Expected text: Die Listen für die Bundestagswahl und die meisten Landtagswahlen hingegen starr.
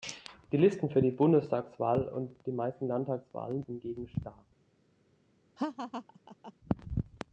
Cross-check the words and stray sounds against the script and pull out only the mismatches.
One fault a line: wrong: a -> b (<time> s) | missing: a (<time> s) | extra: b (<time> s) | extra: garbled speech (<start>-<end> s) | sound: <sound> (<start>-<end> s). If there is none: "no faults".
sound: laugh (5.6-6.5 s)